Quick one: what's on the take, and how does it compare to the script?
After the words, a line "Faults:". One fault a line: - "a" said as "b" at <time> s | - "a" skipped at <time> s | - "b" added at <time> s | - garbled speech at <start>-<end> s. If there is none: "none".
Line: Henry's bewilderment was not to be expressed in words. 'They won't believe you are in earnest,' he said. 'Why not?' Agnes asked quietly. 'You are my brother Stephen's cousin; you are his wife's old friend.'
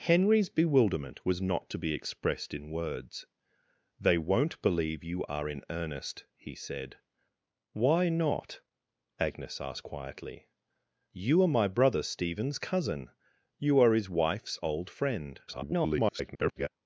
Henry's bewilderment was not to be expressed in words. 'They won't believe you are in earnest,' he said. 'Why not?' Agnes asked quietly. 'You are my brother Stephen's cousin; you are his wife's old friend.' [garbled]
Faults:
- garbled speech at 15.5-16.7 s